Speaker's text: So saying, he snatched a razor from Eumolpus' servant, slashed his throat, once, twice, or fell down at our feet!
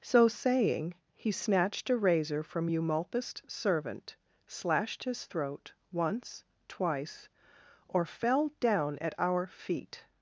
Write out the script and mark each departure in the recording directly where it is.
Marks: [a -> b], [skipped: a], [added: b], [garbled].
So saying, he snatched a razor from Eumolpus' servant, slashed his throat, once, twice, or fell down at our feet!